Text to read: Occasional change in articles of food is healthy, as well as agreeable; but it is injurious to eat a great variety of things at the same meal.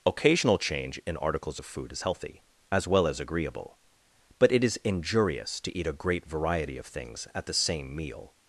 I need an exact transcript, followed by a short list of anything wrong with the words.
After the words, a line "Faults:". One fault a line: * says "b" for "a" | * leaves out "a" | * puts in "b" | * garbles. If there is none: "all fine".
Occasional change in articles of food is healthy, as well as agreeable; but it is injurious to eat a great variety of things at the same meal.
Faults:
all fine